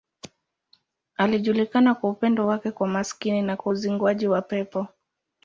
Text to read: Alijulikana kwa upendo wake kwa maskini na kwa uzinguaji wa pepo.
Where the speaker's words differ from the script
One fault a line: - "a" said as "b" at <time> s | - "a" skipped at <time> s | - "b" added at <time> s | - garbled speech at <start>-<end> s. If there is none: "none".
none